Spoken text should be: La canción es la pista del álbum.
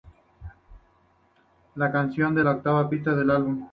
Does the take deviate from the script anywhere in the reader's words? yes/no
yes